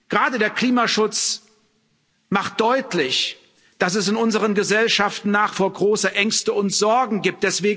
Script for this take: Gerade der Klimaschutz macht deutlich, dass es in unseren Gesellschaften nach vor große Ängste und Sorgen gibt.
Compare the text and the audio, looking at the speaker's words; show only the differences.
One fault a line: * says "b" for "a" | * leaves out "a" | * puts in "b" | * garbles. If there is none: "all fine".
all fine